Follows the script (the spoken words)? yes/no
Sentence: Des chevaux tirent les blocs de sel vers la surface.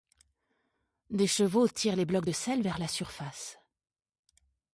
yes